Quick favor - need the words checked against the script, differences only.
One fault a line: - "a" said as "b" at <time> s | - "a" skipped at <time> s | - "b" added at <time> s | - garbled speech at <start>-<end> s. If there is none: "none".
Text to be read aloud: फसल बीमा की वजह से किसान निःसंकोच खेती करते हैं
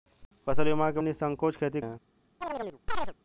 - "वजह से किसान" skipped at 1.0 s
- "करते" skipped at 1.8 s